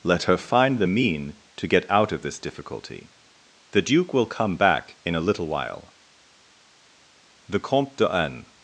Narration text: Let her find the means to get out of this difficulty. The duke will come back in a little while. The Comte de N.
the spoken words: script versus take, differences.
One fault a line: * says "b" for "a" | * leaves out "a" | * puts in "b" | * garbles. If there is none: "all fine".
* says "mean" for "means"